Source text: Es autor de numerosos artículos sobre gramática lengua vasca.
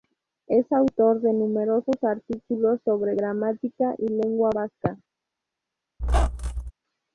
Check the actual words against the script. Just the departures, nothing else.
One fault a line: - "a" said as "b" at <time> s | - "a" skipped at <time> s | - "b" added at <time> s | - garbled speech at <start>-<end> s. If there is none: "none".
- "y" added at 4.0 s